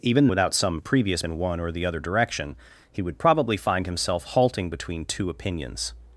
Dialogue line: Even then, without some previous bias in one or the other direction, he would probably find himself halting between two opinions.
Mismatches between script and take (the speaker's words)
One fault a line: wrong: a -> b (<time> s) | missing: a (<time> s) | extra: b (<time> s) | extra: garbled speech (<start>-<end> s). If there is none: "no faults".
missing: then (0.3 s)
missing: bias (1.2 s)